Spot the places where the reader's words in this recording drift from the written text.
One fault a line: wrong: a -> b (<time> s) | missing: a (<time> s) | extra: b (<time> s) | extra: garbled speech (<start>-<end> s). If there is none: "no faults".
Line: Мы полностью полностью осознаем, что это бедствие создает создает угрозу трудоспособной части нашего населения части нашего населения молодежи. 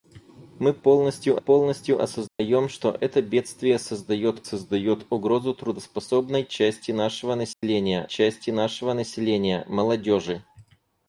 no faults